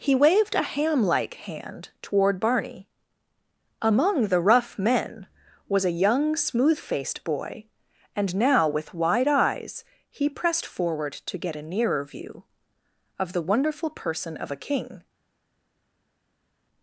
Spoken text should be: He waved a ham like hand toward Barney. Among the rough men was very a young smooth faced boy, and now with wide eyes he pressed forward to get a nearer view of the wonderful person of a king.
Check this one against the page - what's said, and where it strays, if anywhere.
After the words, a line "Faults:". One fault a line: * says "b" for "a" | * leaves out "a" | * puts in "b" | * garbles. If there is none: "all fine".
He waved a ham like hand toward Barney. Among the rough men was a young smooth faced boy, and now with wide eyes he pressed forward to get a nearer view of the wonderful person of a king.
Faults:
* leaves out "very"